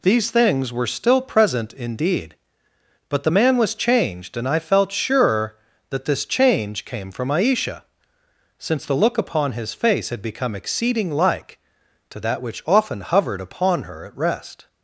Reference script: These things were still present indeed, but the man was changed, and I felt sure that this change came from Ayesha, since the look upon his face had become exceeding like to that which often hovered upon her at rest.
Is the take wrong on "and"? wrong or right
right